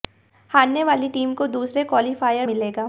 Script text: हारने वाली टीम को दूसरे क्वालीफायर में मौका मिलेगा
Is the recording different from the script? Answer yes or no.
yes